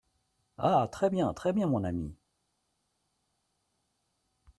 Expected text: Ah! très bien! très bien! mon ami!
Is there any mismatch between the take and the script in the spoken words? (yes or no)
no